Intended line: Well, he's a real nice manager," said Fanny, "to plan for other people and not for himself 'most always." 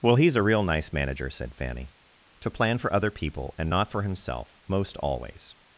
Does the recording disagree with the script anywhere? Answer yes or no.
no